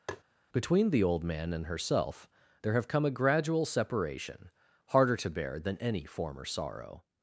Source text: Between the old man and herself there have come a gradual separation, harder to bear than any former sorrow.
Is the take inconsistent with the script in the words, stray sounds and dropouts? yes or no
yes